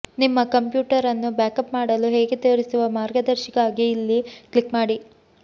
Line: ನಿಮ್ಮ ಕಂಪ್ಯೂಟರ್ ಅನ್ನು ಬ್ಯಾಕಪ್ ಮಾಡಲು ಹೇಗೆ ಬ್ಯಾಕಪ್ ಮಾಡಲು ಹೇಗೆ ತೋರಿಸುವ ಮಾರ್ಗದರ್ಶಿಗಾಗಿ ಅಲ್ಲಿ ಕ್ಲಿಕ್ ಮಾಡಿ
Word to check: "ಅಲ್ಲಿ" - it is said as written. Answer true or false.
false